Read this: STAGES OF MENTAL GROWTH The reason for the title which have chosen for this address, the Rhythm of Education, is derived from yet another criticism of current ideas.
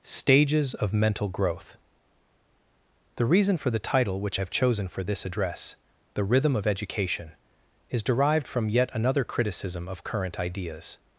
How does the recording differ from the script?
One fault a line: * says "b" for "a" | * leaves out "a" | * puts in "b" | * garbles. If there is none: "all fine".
all fine